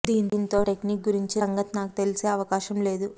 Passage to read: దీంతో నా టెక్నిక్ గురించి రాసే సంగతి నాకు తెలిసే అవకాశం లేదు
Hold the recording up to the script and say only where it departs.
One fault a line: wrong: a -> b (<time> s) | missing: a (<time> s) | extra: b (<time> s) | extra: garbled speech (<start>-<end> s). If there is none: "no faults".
missing: నా (0.6 s)
missing: రాసే (1.4 s)